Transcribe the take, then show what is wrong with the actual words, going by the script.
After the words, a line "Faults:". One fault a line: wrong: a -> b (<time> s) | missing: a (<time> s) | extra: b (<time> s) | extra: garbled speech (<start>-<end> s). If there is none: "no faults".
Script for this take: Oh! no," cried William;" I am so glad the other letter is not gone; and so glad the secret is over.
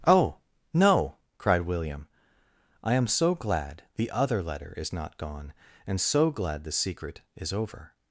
Oh! no," cried William;" I am so glad the other letter is not gone; and so glad the secret is over.
Faults:
no faults